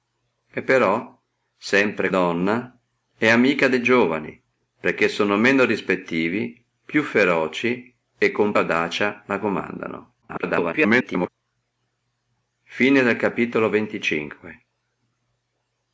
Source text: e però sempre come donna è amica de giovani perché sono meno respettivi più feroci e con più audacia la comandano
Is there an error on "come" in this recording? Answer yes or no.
yes